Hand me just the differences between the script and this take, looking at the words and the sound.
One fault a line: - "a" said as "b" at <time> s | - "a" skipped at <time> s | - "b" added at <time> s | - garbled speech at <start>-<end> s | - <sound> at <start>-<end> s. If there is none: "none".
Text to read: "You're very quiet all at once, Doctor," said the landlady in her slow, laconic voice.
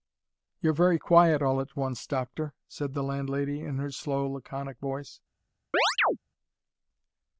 - chirp at 5.7-6.2 s